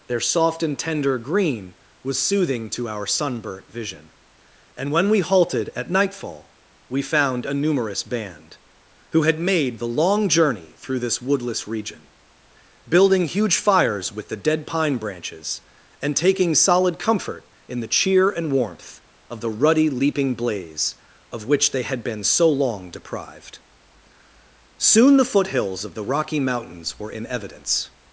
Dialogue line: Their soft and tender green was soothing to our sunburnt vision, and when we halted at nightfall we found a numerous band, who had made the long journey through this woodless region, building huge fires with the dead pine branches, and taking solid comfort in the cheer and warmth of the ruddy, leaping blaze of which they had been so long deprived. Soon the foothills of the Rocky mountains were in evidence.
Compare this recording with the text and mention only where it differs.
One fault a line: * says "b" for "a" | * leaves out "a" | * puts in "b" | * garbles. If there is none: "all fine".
all fine